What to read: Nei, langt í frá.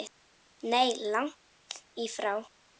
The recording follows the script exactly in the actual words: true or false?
true